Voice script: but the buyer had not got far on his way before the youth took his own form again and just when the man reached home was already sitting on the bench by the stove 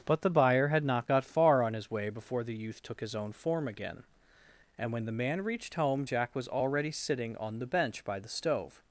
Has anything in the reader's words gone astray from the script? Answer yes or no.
yes